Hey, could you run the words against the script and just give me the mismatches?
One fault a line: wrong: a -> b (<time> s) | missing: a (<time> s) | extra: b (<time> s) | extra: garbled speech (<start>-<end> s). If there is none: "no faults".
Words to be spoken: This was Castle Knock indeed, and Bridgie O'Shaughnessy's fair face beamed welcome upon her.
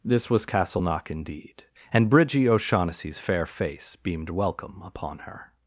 no faults